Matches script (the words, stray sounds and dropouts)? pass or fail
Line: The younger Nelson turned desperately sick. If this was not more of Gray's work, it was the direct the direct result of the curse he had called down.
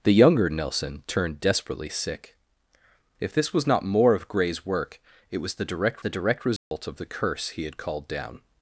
fail